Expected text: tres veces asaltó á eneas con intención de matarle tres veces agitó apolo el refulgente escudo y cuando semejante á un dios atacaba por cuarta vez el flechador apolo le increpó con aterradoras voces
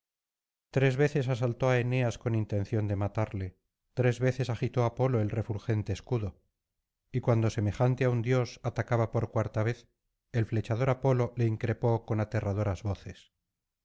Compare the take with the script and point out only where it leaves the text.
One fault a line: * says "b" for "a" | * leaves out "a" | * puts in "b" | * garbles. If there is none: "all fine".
all fine